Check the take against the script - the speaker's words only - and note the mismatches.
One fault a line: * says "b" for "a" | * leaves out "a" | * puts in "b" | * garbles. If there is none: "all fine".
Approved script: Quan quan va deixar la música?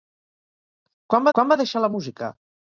all fine